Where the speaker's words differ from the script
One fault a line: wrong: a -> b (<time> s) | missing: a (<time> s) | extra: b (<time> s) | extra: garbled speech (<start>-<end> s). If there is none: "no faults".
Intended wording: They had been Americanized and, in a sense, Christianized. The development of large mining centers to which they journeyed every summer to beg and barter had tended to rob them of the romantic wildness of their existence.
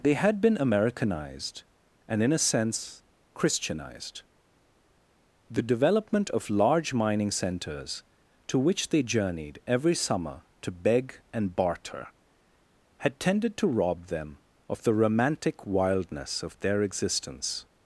no faults